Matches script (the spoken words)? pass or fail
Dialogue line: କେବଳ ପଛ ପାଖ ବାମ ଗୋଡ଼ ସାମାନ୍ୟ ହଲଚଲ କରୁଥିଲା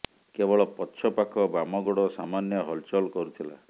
pass